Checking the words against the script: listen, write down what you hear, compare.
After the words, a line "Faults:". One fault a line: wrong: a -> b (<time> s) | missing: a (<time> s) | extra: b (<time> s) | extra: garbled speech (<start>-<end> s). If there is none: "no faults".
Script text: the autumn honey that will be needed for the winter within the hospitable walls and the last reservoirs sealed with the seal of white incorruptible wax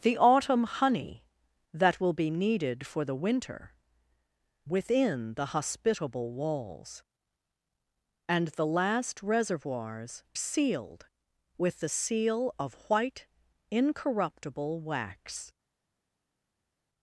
the autumn honey that will be needed for the winter within the hospitable walls and the last reservoirs sealed with the seal of white incorruptible wax
Faults:
no faults